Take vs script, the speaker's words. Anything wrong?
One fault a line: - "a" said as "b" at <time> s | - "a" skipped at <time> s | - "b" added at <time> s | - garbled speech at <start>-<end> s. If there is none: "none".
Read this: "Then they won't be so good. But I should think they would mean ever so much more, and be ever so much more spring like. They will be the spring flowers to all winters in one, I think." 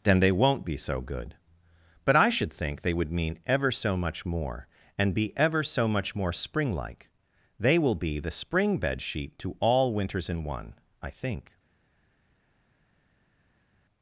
- "flowers" said as "bedsheet" at 8.8 s